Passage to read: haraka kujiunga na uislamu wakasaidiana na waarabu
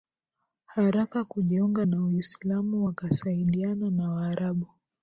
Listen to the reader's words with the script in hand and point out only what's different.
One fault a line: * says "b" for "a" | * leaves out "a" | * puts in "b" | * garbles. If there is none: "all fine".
all fine